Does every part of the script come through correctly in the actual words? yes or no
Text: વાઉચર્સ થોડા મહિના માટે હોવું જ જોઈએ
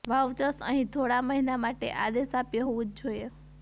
no